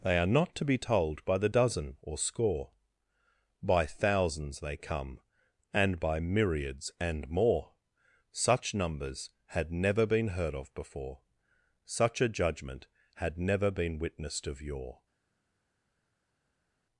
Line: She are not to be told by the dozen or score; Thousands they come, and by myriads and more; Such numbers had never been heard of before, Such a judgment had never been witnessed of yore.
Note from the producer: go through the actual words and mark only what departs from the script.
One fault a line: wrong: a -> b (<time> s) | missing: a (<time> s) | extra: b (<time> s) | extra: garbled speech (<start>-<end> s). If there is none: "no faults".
wrong: She -> They (0.0 s)
extra: By (3.6 s)